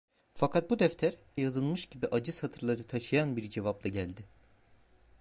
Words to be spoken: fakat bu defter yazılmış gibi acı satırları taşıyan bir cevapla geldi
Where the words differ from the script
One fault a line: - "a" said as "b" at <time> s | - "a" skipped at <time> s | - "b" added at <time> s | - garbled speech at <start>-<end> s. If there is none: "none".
none